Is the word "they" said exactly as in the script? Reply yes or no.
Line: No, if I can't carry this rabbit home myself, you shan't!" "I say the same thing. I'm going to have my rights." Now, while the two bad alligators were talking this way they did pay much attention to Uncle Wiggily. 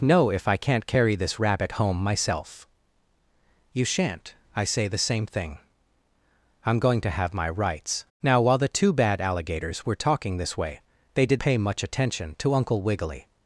yes